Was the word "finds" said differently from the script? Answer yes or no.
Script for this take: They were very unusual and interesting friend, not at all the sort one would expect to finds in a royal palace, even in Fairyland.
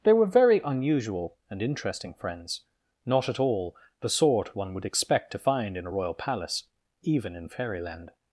yes